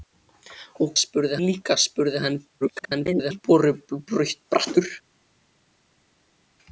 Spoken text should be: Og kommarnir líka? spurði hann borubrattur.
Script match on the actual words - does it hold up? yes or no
no